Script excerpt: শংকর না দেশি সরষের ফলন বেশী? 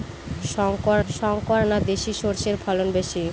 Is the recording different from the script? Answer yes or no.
yes